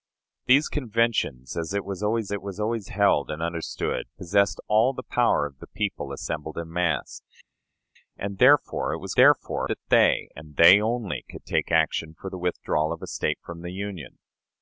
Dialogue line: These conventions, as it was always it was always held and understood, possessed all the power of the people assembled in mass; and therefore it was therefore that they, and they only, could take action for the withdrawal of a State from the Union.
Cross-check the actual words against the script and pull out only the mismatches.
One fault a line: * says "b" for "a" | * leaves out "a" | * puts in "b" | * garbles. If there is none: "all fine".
all fine